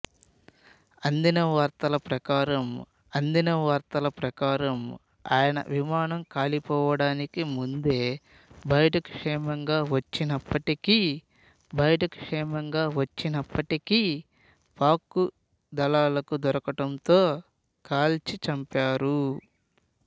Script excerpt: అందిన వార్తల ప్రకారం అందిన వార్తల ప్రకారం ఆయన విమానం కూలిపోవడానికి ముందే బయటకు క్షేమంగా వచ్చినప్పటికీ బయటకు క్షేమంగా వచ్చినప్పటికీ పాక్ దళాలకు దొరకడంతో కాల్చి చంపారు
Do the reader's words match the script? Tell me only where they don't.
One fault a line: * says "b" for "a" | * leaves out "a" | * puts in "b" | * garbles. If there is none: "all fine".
all fine